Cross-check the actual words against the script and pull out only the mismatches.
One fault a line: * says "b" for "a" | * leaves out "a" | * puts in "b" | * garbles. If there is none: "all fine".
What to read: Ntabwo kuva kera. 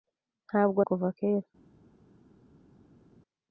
all fine